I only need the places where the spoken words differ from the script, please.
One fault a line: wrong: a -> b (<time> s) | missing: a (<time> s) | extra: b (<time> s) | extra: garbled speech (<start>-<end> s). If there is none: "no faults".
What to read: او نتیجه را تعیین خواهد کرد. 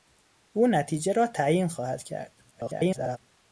extra: garbled speech (2.5-3.2 s)